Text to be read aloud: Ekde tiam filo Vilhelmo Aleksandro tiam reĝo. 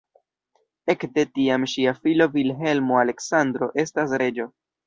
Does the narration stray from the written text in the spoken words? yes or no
yes